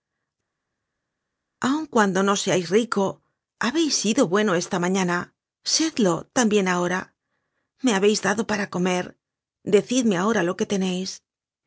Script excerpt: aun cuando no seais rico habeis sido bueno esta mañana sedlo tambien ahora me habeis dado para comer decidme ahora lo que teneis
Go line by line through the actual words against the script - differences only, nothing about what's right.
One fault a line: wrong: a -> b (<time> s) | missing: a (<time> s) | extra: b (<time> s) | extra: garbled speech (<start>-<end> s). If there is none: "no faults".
no faults